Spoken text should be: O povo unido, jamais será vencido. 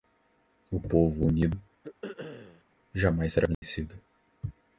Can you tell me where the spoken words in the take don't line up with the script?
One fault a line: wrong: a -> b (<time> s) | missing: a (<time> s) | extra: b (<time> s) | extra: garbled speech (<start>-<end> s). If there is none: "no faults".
no faults